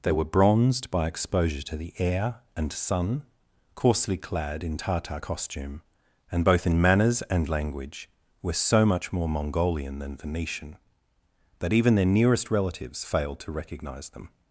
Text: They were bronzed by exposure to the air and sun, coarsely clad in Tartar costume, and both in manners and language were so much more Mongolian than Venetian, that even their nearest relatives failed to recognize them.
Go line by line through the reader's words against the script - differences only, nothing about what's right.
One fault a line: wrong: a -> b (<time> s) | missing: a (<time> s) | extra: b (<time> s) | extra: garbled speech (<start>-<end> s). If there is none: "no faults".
no faults